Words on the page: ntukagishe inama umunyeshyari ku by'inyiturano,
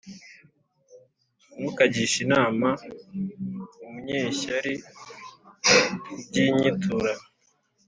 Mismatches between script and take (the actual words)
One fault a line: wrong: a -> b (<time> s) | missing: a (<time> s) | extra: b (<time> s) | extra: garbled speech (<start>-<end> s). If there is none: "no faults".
no faults